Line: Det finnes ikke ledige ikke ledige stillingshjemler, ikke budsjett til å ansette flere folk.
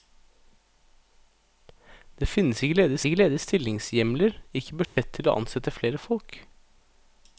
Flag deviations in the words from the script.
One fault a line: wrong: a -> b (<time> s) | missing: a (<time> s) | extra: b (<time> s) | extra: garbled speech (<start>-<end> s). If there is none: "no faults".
no faults